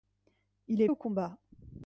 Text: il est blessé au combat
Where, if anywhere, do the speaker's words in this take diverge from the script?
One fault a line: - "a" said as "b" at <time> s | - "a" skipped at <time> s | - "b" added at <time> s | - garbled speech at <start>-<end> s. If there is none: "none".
- "blessé" skipped at 0.9 s